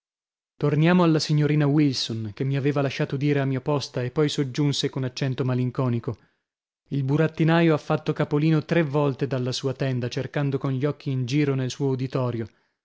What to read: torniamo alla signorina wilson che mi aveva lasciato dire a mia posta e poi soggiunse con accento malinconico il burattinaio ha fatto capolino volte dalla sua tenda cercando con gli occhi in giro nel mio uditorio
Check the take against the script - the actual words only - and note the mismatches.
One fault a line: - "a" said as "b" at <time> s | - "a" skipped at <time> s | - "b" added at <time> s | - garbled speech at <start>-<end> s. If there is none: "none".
- "tre" added at 8.7 s
- "mio" said as "suo" at 11.7 s